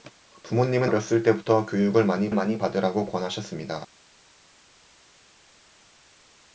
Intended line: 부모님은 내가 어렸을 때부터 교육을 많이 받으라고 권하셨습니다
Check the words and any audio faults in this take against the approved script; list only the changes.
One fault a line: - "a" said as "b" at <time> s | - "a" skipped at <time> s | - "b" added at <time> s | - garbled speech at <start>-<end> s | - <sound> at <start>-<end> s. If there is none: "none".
- "내가" skipped at 0.9 s
- "많이" added at 2.3 s